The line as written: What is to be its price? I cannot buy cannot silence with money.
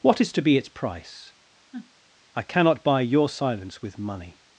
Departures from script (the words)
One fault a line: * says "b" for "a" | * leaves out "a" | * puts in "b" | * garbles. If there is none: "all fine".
* says "your" for "cannot"